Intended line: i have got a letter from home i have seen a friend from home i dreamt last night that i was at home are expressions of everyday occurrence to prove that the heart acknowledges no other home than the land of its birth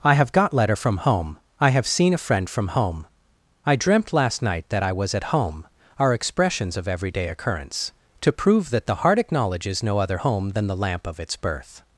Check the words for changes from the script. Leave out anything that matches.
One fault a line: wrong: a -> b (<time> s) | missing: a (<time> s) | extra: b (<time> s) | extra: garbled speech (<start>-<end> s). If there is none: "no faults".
missing: a (0.5 s)
wrong: land -> lamp (10.8 s)